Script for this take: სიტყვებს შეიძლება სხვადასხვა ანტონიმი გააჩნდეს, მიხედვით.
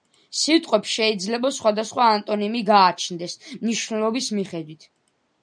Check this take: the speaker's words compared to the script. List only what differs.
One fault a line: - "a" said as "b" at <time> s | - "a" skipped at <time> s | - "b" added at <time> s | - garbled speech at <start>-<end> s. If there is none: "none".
- "მნიშვნელობის" added at 3.7 s